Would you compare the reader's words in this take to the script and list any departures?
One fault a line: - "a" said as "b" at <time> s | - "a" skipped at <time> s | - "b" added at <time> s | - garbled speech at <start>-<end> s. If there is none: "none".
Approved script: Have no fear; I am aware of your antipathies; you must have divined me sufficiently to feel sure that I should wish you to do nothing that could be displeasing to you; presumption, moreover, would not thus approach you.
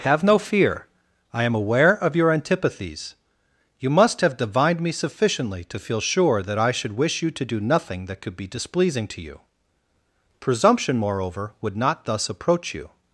none